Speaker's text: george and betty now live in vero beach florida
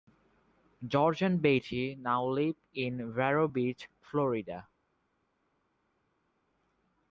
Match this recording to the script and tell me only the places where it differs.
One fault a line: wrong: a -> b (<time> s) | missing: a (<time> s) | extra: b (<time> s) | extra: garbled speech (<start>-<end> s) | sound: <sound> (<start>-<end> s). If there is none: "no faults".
no faults